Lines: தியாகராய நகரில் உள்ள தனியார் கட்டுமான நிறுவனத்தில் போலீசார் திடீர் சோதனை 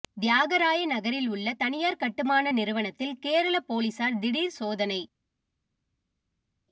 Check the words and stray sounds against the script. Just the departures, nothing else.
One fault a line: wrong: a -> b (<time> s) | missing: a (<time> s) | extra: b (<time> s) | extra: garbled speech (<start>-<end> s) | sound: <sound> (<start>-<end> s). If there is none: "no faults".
extra: கேரள (3.2 s)